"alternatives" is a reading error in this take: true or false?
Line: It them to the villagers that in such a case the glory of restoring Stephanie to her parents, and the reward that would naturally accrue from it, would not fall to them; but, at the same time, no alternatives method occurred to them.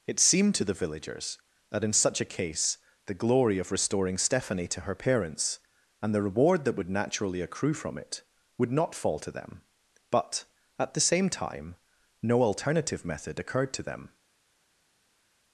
true